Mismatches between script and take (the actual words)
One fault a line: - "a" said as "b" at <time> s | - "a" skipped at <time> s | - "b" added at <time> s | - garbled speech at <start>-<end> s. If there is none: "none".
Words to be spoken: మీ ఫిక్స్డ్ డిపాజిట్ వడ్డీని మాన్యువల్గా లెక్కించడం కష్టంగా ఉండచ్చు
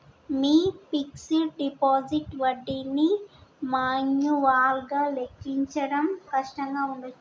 none